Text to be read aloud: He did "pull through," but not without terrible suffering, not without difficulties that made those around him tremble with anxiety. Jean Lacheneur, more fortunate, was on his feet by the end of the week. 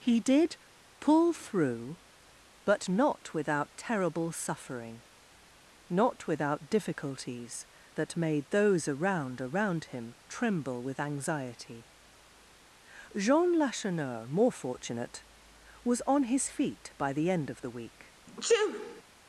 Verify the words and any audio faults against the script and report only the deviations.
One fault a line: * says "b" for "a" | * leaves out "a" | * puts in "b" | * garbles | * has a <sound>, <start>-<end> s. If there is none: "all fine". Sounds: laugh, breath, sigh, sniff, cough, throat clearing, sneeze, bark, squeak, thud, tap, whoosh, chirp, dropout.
* puts in "around"
* has a sneeze, 18.3-19.0 s